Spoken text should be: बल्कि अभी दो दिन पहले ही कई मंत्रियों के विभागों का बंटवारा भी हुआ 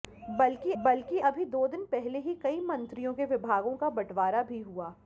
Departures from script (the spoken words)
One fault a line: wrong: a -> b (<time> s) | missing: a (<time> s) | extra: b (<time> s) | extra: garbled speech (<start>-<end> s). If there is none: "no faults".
extra: बल्कि (0.8 s)